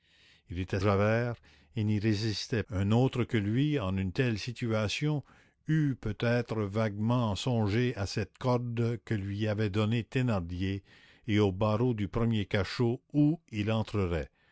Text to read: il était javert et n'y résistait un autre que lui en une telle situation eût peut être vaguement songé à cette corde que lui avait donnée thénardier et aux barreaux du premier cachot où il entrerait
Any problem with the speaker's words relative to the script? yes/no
no